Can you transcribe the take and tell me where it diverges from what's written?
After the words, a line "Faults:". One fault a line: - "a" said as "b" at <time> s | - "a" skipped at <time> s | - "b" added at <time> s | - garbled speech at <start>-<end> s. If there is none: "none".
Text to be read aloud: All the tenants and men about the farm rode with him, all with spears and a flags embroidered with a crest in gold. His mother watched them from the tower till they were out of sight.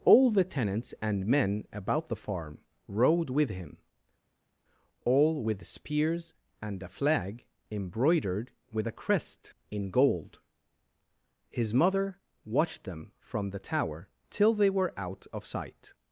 All the tenants and men about the farm rode with him, all with spears and a flag embroidered with a crest in gold. His mother watched them from the tower till they were out of sight.
Faults:
- "flags" said as "flag" at 6.9 s